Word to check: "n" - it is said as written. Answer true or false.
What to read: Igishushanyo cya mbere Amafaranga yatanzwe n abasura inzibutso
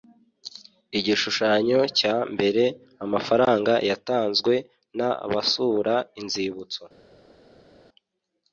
true